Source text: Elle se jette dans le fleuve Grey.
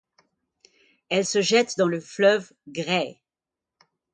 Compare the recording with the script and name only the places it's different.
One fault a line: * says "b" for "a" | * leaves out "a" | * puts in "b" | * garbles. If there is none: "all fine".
all fine